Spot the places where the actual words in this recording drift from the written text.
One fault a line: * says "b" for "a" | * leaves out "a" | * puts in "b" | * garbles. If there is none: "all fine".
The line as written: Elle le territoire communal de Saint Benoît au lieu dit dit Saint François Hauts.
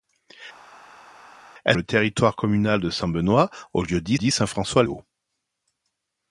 all fine